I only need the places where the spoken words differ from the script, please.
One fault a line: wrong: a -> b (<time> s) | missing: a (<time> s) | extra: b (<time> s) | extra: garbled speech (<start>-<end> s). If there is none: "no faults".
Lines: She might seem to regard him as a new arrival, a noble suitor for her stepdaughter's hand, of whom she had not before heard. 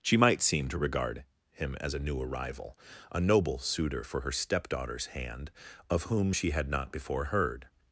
no faults